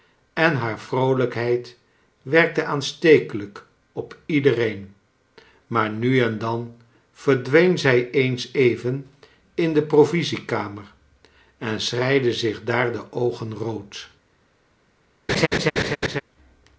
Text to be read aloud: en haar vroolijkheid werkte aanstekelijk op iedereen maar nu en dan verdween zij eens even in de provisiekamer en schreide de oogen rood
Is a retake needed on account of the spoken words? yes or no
yes